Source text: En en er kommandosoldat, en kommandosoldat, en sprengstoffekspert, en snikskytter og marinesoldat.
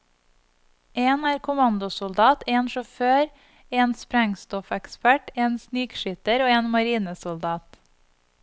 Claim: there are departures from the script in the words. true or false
true